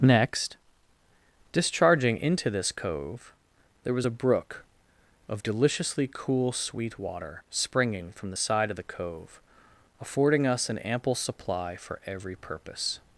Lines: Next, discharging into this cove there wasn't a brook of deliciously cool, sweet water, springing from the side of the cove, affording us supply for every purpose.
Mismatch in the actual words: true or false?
true